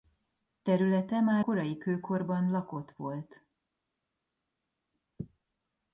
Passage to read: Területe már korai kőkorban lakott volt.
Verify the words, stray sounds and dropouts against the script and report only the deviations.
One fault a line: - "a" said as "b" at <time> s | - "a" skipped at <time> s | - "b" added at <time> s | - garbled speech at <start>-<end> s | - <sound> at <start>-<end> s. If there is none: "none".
none